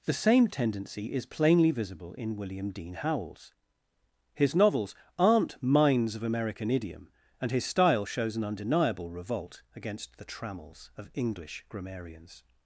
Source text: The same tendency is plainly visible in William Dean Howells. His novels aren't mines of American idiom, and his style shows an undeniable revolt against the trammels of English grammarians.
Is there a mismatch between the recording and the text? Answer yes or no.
no